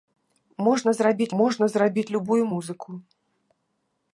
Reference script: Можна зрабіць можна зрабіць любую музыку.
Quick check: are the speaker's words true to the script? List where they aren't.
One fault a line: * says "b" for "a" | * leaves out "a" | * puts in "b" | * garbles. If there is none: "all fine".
all fine